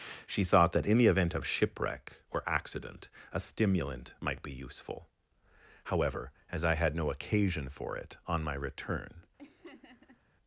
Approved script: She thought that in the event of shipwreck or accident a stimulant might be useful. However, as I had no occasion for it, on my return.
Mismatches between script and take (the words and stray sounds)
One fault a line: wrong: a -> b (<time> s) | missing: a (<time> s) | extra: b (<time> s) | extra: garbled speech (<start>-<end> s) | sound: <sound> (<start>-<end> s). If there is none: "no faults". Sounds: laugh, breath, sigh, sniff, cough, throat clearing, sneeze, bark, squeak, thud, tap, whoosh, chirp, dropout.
sound: laugh (9.4-10.2 s)